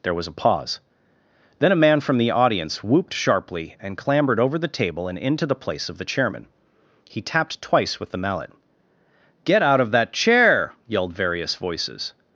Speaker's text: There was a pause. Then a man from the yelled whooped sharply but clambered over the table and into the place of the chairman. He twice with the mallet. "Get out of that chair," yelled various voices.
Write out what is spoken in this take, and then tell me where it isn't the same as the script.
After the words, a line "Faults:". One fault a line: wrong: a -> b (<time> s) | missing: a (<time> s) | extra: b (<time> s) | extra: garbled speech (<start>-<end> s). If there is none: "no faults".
There was a pause. Then a man from the audience whooped sharply and clambered over the table and into the place of the chairman. He tapped twice with the mallet. "Get out of that chair," yelled various voices.
Faults:
wrong: yelled -> audience (2.3 s)
wrong: but -> and (3.8 s)
extra: tapped (7.2 s)